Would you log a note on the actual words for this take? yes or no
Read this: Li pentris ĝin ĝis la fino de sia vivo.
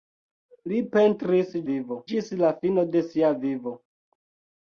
yes